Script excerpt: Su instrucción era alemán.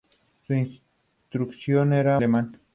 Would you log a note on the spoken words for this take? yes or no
no